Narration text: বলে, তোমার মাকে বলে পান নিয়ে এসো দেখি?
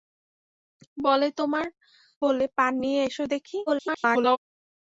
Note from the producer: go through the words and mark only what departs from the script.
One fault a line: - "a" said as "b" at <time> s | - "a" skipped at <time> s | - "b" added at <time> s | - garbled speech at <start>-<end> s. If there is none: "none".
- "মাকে" skipped at 1.6 s
- garbled speech at 3.7-4.4 s